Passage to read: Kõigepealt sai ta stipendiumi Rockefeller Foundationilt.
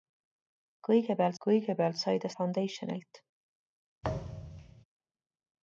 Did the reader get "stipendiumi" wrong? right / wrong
wrong